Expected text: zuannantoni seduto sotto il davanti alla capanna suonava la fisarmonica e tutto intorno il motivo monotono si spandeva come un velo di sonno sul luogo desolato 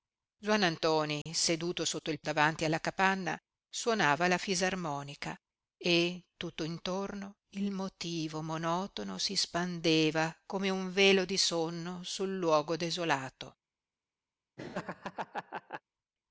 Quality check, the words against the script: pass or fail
pass